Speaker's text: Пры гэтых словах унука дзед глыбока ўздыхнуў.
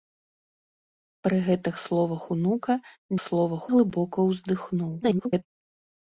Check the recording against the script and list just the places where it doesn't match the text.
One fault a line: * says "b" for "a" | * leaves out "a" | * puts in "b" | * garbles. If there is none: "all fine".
* says "словах" for "дзед"
* garbles